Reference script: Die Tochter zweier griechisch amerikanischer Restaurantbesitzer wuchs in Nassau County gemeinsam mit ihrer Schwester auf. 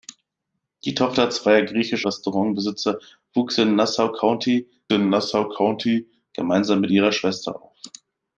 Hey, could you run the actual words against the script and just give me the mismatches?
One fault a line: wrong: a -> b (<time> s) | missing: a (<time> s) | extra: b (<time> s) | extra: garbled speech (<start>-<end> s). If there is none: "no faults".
missing: amerikanischer (2.1 s)
extra: in Nassau County (4.9 s)